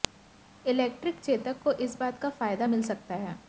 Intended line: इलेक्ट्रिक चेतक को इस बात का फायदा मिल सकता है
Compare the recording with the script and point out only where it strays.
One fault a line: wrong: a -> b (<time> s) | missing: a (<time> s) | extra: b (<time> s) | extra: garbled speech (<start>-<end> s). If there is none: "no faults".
no faults